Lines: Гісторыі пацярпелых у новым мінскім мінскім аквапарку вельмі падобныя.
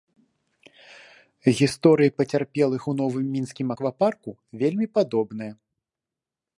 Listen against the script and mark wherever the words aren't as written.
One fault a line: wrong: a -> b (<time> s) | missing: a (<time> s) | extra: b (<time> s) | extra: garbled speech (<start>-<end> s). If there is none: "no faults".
missing: мінскім (3.7 s)